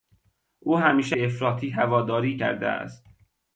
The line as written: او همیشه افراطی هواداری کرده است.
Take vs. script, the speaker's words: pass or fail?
pass